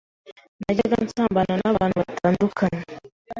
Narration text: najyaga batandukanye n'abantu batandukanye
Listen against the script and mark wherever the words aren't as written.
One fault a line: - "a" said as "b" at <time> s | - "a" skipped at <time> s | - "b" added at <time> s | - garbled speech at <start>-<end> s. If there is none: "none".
- "batandukanye" said as "nsambana" at 1.1 s